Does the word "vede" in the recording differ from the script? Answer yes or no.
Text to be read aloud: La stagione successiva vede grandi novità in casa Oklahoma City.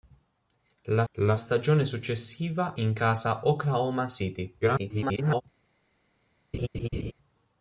yes